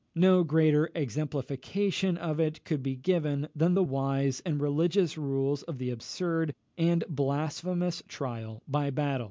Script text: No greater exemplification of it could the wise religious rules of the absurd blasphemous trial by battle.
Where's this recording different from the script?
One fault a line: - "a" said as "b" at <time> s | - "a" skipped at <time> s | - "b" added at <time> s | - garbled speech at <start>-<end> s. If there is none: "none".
- "be given than" added at 2.8 s
- "and" added at 4.4 s
- "and" added at 6.8 s